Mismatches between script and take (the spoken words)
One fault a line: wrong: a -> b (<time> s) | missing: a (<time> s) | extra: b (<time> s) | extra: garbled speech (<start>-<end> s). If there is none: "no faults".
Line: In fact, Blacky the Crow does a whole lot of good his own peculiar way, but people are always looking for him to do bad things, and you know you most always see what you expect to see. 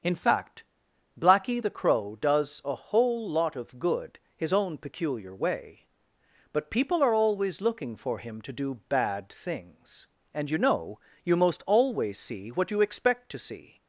no faults